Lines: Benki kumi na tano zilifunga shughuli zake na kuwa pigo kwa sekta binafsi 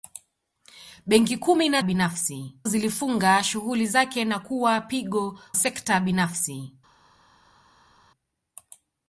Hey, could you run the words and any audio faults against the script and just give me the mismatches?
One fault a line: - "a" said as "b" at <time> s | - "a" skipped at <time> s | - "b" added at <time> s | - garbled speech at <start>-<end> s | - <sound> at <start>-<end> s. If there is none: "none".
- "tano" said as "binafsi" at 1.8 s
- "kwa" skipped at 5.4 s